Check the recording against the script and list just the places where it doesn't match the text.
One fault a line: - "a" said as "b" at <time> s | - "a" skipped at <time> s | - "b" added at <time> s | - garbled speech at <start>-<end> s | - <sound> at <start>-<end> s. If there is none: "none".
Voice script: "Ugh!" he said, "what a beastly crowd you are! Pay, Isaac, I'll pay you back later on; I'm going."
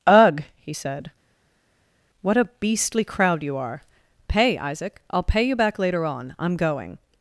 none